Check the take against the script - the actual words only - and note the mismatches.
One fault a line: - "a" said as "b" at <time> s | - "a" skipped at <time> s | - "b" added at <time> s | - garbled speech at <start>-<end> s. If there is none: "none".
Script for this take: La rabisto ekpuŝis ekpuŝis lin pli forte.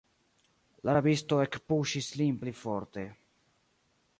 - "ekpuŝis" skipped at 2.1 s